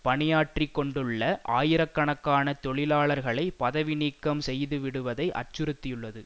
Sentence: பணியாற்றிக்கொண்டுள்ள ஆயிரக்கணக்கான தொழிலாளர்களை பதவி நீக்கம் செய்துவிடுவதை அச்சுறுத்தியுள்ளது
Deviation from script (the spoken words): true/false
false